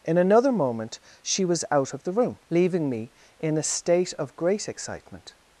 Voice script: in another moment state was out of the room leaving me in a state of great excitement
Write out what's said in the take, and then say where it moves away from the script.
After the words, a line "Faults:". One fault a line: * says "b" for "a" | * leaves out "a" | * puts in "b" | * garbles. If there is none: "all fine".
in another moment she was out of the room leaving me in a state of great excitement
Faults:
* says "she" for "state"